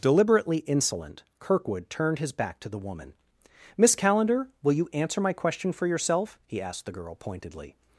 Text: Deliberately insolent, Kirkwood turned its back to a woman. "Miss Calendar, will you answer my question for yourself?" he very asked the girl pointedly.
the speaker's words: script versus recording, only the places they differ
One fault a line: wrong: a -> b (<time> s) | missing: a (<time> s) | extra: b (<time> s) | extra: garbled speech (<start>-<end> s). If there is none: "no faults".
wrong: its -> his (2.2 s)
wrong: a -> the (2.7 s)
missing: very (6.6 s)